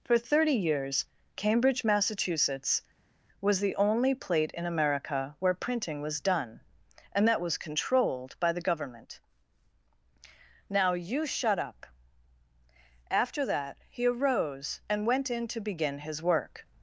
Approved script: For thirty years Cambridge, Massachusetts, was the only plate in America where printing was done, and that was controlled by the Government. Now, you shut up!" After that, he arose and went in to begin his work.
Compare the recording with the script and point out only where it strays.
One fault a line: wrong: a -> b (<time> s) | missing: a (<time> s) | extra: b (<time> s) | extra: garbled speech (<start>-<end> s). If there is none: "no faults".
no faults